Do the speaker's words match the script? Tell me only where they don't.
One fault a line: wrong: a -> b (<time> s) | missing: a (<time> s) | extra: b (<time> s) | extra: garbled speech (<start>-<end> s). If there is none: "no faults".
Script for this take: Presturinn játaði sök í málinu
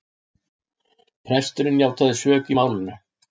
no faults